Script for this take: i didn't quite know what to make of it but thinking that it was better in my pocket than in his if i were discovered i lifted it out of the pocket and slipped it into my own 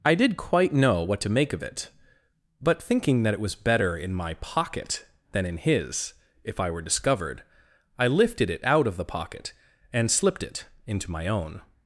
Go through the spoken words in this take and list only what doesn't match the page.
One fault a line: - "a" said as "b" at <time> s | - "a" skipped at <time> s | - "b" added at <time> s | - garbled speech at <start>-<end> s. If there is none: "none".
- "didn't" said as "did" at 0.1 s